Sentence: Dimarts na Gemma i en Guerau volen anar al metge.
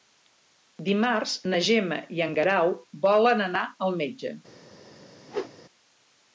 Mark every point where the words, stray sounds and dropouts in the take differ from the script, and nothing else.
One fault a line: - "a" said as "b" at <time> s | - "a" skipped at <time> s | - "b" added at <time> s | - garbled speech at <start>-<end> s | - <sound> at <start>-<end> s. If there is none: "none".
- whoosh at 5.3-5.6 s